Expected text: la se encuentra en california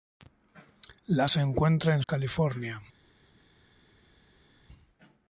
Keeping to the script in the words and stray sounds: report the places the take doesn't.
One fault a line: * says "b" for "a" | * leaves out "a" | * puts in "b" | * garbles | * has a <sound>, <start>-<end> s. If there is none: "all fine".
all fine